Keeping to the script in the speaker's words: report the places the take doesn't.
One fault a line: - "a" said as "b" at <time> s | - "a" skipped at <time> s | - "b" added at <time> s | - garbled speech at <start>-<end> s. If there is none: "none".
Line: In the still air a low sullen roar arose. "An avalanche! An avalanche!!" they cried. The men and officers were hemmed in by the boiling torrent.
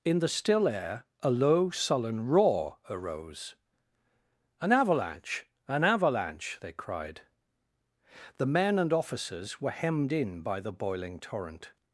none